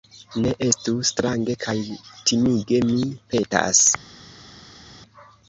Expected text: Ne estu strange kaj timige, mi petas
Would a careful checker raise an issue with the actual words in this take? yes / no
no